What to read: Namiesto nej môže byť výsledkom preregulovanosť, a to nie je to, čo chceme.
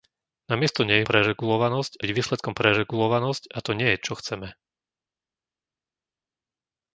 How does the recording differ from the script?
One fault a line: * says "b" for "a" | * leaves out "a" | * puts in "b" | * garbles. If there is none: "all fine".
* says "preregulovanosť" for "môže"
* leaves out "to"